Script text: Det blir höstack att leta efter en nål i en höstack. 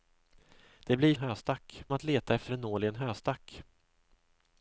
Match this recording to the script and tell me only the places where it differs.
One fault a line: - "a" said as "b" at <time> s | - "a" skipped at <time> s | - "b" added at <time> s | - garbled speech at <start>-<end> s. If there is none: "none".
none